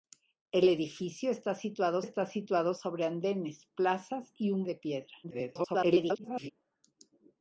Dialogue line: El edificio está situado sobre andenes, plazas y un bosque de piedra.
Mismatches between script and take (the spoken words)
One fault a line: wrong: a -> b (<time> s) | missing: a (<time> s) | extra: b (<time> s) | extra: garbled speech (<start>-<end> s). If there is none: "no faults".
extra: está situado (2.0 s)
missing: bosque (4.6 s)
extra: garbled speech (5.2-6.5 s)